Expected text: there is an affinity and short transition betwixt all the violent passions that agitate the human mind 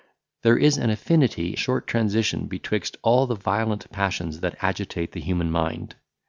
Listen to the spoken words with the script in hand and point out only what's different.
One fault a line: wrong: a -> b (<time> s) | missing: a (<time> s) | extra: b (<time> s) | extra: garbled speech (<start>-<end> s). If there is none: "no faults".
missing: and (1.6 s)